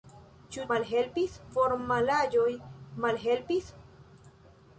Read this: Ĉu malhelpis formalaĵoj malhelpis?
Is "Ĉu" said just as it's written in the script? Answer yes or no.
yes